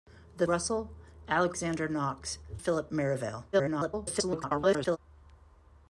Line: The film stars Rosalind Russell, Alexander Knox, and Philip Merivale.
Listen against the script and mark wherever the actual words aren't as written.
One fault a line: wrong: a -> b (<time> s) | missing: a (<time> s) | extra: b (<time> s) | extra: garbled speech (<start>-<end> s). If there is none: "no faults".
missing: film stars Rosalind (0.5 s)
missing: and (2.4 s)
extra: garbled speech (3.5-5.0 s)